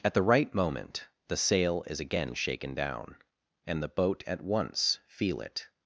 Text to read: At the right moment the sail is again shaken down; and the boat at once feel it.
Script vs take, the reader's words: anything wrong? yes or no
no